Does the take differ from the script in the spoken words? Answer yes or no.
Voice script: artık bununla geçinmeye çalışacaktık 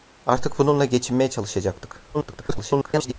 yes